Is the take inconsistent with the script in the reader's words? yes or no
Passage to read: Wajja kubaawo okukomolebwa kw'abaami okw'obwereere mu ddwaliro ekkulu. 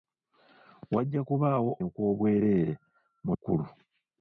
yes